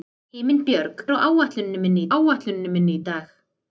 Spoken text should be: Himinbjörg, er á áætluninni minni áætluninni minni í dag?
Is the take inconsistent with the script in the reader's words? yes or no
no